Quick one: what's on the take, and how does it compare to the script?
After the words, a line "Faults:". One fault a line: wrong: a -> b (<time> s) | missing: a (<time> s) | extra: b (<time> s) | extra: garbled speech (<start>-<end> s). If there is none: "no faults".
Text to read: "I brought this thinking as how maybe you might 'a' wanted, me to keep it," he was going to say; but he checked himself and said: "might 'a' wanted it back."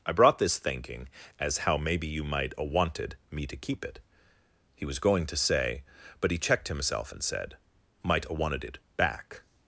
"I brought this thinking as how maybe you might 'a' wanted, me to keep it," he was going to say; but he checked himself and said: "might 'a' wanted it back."
Faults:
no faults